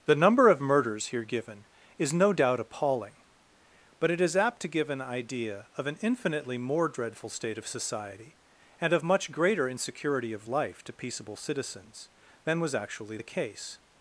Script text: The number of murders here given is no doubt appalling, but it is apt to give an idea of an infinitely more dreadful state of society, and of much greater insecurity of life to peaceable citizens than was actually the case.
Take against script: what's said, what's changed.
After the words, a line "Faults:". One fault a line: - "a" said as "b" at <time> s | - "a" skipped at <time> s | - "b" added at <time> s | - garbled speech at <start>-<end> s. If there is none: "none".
The number of murders here given is no doubt appalling, but it is apt to give an idea of an infinitely more dreadful state of society, and of much greater insecurity of life to peaceable citizens than was actually the case.
Faults:
none